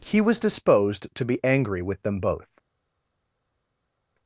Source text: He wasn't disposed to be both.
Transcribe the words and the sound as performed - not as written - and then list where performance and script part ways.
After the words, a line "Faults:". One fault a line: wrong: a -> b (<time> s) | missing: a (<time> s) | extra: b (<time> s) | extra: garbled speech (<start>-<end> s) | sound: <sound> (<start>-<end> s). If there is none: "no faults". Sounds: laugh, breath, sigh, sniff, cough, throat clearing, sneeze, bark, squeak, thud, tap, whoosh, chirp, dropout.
He was disposed to be angry with them both.
Faults:
wrong: wasn't -> was (0.2 s)
extra: angry with them (1.4 s)